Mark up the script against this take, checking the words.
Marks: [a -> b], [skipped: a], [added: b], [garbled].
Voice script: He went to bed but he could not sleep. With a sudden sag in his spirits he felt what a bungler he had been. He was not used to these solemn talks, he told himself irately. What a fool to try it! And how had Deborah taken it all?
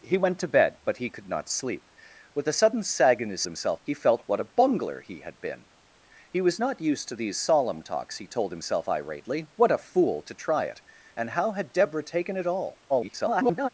He went to bed but he could not sleep. With a sudden sag in his [spirits -> himself] he felt what a bungler he had been. He was not used to these solemn talks, he told himself irately. What a fool to try it! And how had Deborah taken it all? [garbled]